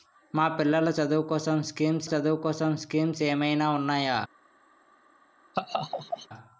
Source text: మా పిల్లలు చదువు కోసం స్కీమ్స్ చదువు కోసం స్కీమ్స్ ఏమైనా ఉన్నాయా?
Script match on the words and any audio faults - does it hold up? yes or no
no